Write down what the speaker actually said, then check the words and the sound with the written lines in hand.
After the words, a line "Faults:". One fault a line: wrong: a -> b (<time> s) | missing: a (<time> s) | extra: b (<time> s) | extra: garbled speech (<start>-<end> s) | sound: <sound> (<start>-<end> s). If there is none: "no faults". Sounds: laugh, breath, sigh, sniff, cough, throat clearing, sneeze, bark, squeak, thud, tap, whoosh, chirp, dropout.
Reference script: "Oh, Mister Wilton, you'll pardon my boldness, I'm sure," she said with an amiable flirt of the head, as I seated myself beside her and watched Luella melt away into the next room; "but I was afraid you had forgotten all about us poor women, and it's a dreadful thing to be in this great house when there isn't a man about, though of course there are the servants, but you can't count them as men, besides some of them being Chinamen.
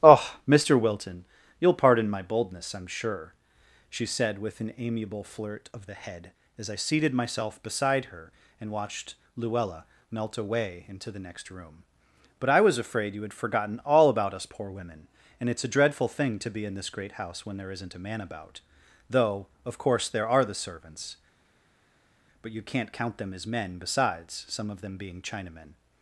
"Oh, Mister Wilton, you'll pardon my boldness, I'm sure," she said with an amiable flirt of the head, as I seated myself beside her and watched Luella melt away into the next room; "but I was afraid you had forgotten all about us poor women, and it's a dreadful thing to be in this great house when there isn't a man about, though of course there are the servants, but you can't count them as men, besides some of them being Chinamen.
Faults:
no faults